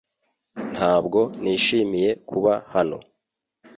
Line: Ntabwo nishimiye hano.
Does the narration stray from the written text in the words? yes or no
yes